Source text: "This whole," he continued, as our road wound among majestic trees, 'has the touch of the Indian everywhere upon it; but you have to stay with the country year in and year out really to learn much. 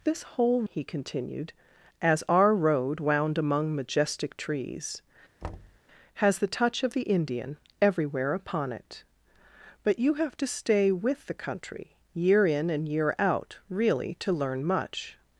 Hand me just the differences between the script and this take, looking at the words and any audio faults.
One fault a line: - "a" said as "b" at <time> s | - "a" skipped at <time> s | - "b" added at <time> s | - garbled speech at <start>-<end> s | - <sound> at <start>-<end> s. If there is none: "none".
- thud at 5.4-5.8 s